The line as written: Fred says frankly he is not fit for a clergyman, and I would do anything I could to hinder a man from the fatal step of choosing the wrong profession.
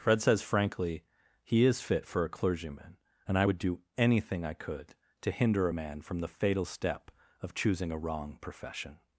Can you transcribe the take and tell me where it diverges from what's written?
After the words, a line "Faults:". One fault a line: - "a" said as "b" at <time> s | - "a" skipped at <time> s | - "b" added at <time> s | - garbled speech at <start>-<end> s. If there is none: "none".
Fred says frankly he is fit for a clergyman, and I would do anything I could to hinder a man from the fatal step of choosing a wrong profession.
Faults:
- "not" skipped at 1.8 s
- "the" said as "a" at 7.9 s